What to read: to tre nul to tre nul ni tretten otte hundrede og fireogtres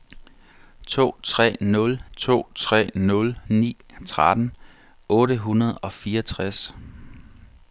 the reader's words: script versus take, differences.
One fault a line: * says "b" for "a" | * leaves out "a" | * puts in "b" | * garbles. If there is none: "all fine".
all fine